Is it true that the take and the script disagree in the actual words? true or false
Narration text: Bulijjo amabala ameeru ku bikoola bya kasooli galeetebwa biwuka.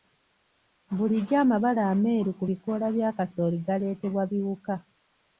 false